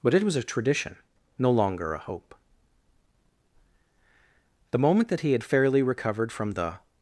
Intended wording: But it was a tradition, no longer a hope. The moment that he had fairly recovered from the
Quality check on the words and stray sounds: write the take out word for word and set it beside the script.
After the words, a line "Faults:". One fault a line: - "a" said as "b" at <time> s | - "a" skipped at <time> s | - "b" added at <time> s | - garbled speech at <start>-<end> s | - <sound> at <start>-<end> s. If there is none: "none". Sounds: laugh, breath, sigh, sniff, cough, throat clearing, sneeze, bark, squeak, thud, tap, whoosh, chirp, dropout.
But it was a tradition, no longer a hope. The moment that he had fairly recovered from the
Faults:
none